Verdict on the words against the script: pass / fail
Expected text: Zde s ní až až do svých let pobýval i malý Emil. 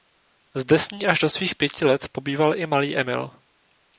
fail